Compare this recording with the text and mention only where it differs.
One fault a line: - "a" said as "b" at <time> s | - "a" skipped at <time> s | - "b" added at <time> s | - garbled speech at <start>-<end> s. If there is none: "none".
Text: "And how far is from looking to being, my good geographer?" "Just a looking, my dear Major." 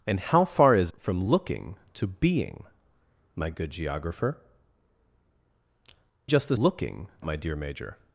none